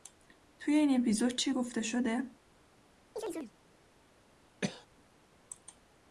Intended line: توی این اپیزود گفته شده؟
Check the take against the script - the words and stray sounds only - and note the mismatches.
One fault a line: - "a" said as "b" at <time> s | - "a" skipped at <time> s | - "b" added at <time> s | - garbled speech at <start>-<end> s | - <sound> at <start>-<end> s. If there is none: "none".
- "چی" added at 1.4 s
- chirp at 3.2-3.5 s
- cough at 4.6-4.9 s